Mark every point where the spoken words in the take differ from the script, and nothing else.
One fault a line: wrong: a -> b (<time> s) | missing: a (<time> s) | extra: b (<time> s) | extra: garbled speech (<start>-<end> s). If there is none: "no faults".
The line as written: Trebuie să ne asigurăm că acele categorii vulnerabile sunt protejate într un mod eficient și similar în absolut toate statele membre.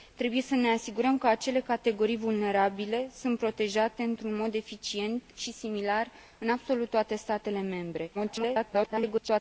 extra: garbled speech (8.1-9.4 s)